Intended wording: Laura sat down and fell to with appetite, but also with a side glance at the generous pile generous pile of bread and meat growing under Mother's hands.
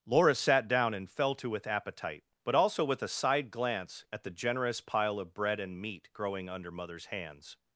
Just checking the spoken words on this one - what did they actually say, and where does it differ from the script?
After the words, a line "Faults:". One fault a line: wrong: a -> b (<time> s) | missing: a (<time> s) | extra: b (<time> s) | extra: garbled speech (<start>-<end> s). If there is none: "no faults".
Laura sat down and fell to with appetite, but also with a side glance at the generous pile of bread and meat growing under Mother's hands.
Faults:
missing: generous pile (5.2 s)